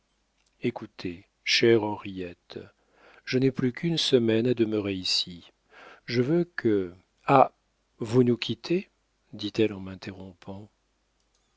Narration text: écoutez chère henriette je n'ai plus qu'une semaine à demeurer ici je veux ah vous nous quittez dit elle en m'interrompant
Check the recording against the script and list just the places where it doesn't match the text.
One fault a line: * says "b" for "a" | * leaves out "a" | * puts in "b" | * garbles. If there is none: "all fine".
* puts in "que"